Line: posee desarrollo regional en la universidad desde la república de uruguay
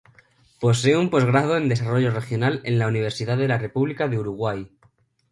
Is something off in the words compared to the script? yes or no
yes